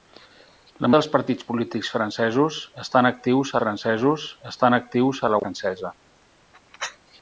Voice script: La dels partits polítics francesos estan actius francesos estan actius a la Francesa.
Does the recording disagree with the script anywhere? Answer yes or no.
no